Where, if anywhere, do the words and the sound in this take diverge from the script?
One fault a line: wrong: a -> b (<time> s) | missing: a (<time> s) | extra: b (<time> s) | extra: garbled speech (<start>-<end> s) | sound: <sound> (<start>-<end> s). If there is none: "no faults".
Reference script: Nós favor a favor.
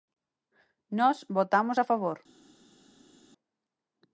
wrong: favor -> votamos (1.3 s)